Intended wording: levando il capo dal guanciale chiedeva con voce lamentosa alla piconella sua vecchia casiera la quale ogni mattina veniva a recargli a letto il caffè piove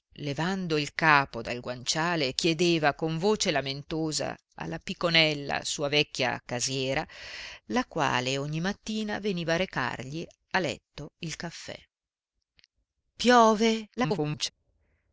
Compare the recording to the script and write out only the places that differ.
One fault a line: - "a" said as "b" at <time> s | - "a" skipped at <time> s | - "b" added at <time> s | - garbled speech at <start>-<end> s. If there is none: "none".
- garbled speech at 14.0-14.5 s